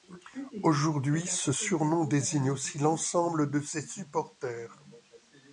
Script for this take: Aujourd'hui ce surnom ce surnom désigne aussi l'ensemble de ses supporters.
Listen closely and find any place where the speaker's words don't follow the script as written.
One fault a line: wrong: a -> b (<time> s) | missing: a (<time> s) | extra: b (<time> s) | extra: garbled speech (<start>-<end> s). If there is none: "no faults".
missing: ce surnom (2.1 s)